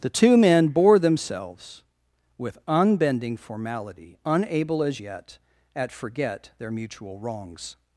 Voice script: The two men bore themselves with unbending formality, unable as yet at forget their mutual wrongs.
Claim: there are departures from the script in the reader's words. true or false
false